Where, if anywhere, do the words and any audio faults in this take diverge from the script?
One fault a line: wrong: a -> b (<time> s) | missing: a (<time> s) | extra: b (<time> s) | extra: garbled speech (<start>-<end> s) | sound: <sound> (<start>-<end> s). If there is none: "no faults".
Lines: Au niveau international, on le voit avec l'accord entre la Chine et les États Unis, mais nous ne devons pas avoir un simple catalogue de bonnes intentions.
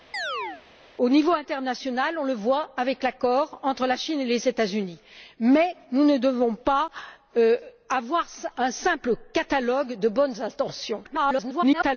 sound: chirp (0.1-0.6 s)
extra: garbled speech (11.0-12.0 s)